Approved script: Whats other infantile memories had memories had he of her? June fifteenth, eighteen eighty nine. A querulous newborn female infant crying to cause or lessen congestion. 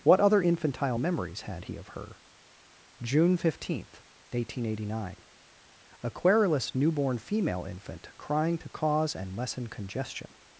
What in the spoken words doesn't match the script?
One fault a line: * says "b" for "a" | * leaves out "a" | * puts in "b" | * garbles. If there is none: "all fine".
* says "What" for "Whats"
* leaves out "memories had"
* says "and" for "or"